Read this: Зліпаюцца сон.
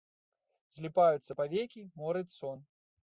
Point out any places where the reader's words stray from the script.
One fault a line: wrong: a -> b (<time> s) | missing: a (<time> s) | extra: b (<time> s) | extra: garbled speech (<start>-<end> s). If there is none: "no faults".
extra: павекі морыць (1.4 s)